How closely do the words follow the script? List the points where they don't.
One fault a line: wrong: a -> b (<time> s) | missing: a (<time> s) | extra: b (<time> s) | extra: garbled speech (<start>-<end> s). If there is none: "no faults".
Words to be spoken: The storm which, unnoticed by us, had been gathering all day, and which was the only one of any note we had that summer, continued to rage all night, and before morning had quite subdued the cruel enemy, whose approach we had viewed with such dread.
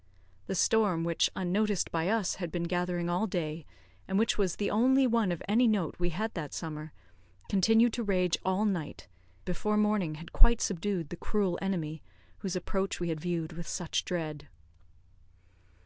missing: and (9.1 s)